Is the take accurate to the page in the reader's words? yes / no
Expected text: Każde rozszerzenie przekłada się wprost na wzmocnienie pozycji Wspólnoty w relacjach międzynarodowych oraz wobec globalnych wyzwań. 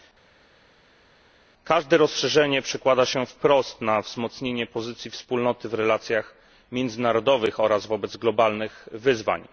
yes